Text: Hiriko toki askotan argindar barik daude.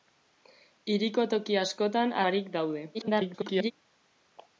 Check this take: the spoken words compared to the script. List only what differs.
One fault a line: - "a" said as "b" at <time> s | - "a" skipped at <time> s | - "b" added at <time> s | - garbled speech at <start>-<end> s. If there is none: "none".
- "argindar" skipped at 2.2 s
- garbled speech at 2.9-3.7 s